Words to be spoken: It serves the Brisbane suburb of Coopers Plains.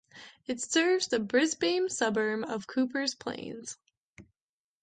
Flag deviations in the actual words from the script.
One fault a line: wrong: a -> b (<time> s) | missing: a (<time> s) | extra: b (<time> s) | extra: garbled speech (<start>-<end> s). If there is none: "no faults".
no faults